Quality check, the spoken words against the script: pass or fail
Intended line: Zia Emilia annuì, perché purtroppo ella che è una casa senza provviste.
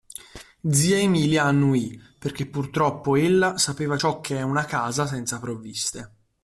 fail